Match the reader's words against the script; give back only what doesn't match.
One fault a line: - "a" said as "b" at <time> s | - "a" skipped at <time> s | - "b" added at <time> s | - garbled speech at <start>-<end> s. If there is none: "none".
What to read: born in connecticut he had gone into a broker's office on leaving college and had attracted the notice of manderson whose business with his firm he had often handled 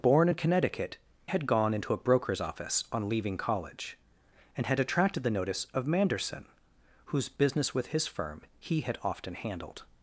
- "he" skipped at 1.0 s